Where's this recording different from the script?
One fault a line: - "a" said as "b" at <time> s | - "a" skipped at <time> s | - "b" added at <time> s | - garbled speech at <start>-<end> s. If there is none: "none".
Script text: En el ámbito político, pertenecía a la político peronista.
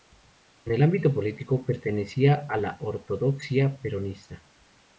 - "político" said as "ortodoxia" at 2.8 s